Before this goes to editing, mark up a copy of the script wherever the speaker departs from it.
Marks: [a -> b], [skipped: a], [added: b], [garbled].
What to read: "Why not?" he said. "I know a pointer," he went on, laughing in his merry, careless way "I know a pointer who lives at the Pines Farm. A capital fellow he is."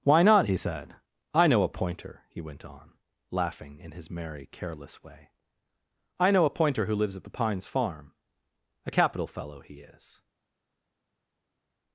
"Why not?" he said. "I know a pointer," he went on, laughing in his merry, careless way "I know a pointer who lives at the Pines Farm. A capital fellow he is."